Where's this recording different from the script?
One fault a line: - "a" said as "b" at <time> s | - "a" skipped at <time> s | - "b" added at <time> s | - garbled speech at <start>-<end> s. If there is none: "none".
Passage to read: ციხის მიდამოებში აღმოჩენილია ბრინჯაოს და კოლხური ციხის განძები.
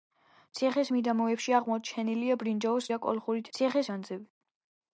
none